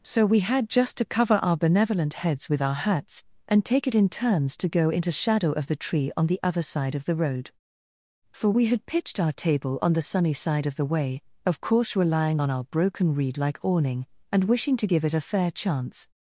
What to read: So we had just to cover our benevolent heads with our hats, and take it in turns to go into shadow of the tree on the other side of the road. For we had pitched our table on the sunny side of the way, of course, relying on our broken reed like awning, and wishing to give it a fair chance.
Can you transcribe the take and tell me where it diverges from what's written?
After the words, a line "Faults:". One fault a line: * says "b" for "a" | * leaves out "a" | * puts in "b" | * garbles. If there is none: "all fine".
So we had just to cover our benevolent heads with our hats, and take it in turns to go into shadow of the tree on the other side of the road. For we had pitched our table on the sunny side of the way, of course, relying on our broken reed like awning, and wishing to give it a fair chance.
Faults:
all fine